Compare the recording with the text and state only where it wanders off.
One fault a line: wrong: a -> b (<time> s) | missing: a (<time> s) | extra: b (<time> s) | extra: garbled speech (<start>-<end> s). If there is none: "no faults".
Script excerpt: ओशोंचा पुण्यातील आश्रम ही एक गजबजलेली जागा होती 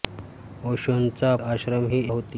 missing: पुण्यातील (1.4 s)
missing: एक गजबजलेली जागा (2.0 s)